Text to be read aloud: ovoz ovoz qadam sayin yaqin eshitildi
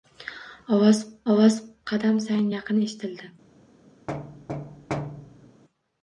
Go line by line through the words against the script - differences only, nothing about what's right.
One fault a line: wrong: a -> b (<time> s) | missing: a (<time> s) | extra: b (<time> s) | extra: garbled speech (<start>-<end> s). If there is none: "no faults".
no faults